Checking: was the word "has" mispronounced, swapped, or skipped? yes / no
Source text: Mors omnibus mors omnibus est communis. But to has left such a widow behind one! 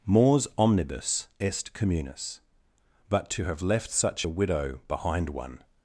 yes